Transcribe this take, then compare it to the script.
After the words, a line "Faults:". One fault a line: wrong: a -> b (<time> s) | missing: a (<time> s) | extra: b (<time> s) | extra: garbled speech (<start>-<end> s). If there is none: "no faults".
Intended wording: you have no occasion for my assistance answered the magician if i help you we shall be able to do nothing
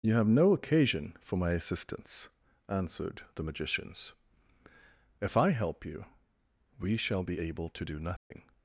you have no occasion for my assistance answered the magicians if i help you we shall be able to do nothing
Faults:
wrong: magician -> magicians (3.4 s)